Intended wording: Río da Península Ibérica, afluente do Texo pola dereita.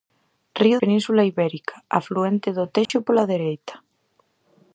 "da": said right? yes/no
no